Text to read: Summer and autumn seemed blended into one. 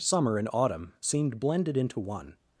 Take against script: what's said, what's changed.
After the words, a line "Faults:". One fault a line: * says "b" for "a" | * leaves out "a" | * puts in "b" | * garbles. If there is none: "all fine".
Summer and autumn seemed blended into one.
Faults:
all fine